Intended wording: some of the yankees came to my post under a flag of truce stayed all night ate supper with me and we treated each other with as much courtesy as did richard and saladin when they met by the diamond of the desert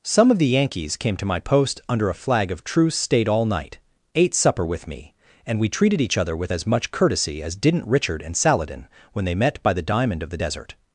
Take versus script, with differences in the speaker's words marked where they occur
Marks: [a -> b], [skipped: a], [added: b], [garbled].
some of the yankees came to my post under a flag of truce stayed all night ate supper with me and we treated each other with as much courtesy as [did -> didn't] richard and saladin when they met by the diamond of the desert